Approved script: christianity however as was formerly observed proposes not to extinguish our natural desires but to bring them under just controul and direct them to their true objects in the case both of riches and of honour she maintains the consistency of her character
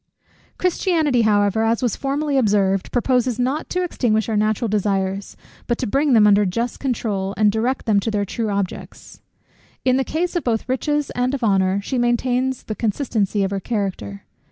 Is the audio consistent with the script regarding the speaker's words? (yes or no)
yes